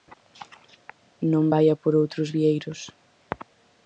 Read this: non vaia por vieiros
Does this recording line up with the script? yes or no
no